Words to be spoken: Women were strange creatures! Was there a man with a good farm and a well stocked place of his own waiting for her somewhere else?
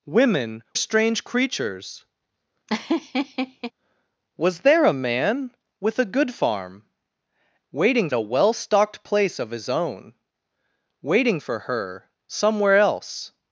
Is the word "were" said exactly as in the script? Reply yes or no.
no